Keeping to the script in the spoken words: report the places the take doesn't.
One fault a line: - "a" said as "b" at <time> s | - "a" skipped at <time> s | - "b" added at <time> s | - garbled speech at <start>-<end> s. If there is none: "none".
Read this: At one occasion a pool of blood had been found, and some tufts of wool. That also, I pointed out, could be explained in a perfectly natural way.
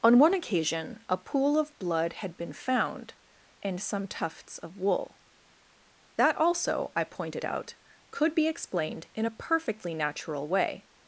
- "At" said as "On" at 0.0 s